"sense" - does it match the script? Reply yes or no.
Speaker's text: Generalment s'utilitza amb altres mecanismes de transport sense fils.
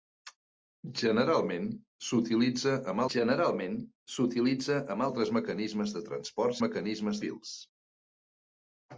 no